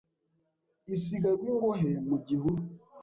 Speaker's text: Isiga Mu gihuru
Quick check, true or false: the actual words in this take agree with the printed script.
false